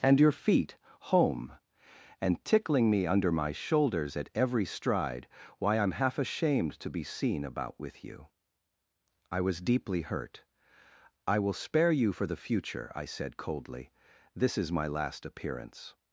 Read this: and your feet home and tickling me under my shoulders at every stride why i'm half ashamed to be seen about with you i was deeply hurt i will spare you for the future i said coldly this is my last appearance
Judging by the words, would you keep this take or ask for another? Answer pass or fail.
pass